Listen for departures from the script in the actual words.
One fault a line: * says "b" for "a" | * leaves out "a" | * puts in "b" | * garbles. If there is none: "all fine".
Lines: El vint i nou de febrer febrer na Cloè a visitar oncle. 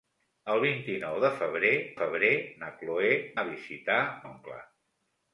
all fine